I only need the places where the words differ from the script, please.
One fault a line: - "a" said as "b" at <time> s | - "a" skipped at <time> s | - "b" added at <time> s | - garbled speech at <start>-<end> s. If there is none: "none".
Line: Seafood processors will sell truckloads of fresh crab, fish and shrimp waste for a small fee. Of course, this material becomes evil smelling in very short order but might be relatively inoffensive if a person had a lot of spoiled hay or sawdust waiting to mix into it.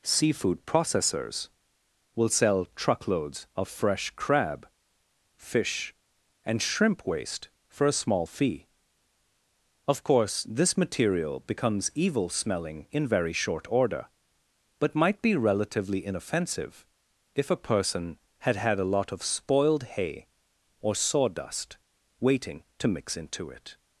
- "had" added at 18.6 s